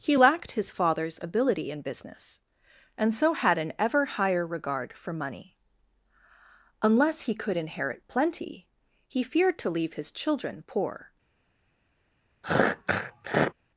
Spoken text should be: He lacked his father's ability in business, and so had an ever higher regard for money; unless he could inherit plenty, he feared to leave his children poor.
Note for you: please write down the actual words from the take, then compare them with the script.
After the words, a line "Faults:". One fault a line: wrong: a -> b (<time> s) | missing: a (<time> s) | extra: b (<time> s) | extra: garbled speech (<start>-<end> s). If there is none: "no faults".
He lacked his father's ability in business, and so had an ever higher regard for money; unless he could inherit plenty, he feared to leave his children poor.
Faults:
no faults